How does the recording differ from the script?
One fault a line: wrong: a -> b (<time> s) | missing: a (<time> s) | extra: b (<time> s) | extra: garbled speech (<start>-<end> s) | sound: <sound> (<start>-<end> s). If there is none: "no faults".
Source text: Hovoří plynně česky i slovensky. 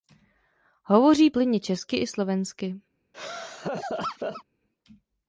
sound: laugh (3.1-4.4 s)